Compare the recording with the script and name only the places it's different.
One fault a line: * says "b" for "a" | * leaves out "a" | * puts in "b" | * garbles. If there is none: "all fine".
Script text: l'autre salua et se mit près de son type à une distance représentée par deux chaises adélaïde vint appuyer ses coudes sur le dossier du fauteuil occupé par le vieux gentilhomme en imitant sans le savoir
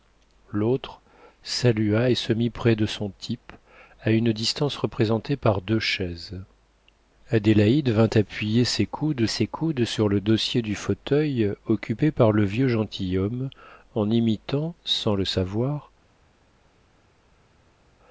* puts in "ses coudes"